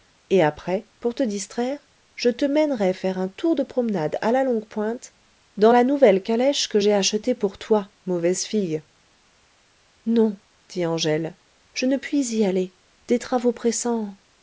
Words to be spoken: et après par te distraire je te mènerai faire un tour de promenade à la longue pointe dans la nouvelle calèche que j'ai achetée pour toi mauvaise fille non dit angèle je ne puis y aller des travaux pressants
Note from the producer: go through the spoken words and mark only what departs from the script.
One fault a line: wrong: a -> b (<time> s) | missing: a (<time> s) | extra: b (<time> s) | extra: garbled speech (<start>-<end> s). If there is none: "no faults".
wrong: par -> pour (1.0 s)